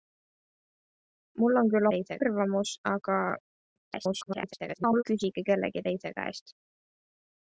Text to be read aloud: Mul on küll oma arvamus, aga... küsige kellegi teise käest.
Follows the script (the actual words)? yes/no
no